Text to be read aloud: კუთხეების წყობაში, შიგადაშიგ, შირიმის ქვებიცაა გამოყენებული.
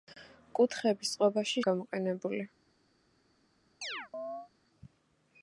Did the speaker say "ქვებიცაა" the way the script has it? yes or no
no